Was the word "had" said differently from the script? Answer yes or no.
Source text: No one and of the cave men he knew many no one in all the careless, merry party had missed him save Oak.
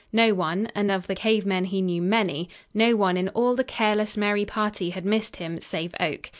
no